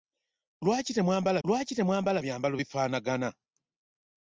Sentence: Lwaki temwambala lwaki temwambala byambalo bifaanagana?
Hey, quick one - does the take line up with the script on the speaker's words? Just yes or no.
yes